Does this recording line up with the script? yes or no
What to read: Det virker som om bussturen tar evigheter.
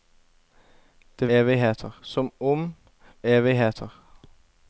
no